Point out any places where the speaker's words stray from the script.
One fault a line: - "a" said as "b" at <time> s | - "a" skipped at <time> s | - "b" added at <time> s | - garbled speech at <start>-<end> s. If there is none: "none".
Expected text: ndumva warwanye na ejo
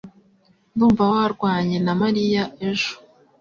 - "mariya" added at 2.0 s